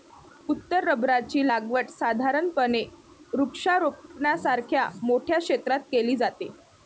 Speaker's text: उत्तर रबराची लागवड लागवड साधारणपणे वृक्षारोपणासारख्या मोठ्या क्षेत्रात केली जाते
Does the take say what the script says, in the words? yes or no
no